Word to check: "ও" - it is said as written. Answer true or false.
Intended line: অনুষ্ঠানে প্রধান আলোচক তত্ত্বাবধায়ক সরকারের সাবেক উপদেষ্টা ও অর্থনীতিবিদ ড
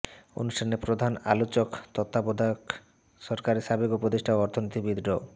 true